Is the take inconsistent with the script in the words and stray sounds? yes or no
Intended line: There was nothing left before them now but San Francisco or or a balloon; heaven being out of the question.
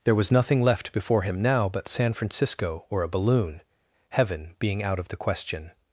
yes